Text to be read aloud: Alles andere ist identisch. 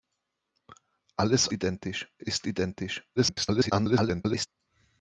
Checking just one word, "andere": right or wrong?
wrong